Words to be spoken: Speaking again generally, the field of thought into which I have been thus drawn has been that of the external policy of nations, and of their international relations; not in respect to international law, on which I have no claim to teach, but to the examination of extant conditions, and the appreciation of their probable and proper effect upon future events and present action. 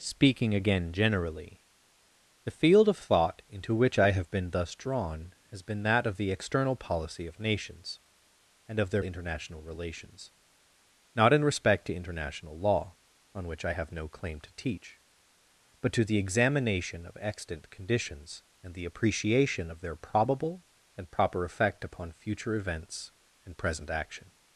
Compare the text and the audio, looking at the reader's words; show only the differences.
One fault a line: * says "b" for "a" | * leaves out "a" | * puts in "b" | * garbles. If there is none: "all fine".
all fine